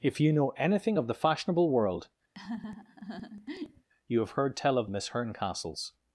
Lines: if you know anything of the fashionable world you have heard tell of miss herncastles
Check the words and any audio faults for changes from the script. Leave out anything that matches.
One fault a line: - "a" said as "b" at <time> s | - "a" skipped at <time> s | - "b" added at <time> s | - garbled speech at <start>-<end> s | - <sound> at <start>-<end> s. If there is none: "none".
- laugh at 2.3-3.9 s